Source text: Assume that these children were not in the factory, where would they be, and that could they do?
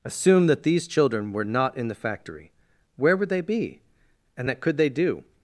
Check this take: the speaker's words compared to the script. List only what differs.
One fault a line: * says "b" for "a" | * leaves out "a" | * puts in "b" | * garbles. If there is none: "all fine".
all fine